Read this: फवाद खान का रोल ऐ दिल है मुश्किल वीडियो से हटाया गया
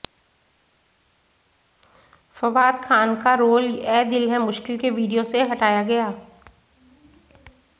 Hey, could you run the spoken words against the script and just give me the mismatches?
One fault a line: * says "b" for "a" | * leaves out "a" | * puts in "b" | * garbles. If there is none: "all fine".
* puts in "के"